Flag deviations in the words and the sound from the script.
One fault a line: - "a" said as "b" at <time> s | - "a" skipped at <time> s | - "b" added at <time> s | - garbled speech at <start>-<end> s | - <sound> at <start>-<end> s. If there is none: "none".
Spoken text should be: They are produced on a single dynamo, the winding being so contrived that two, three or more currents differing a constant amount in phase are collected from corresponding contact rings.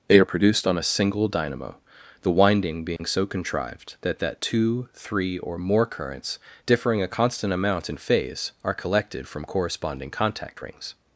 - dropout at 3.0-3.0 s
- "that" added at 4.2 s